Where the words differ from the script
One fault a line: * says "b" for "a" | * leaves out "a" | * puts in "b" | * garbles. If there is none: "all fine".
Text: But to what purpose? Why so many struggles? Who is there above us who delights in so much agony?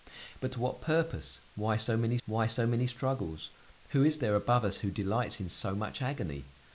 * puts in "why so many"